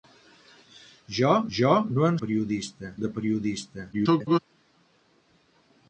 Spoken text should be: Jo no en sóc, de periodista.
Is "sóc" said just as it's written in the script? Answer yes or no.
no